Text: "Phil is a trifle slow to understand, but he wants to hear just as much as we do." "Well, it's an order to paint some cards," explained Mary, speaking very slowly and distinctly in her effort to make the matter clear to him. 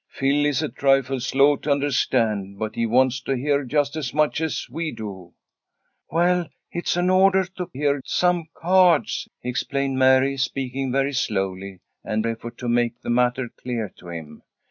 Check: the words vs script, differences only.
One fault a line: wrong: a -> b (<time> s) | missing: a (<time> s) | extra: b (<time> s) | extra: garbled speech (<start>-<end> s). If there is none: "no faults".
wrong: paint -> hear (7.7 s)
missing: distinctly in her (12.2 s)